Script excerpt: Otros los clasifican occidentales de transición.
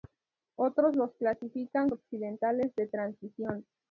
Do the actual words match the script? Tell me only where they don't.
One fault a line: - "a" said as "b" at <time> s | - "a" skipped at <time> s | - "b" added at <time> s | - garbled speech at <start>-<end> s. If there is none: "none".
none